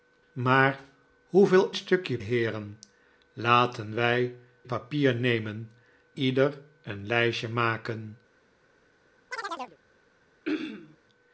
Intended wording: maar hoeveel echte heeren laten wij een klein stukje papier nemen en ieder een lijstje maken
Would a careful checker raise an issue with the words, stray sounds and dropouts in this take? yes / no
yes